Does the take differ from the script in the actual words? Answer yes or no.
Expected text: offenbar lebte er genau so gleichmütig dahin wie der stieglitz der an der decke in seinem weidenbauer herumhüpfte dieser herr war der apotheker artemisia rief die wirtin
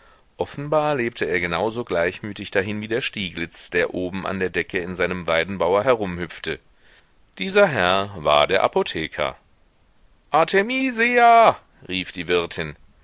yes